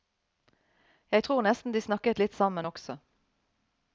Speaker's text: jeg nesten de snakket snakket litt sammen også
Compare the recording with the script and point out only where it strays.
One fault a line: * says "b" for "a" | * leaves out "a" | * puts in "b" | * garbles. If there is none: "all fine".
* puts in "tror"
* leaves out "snakket"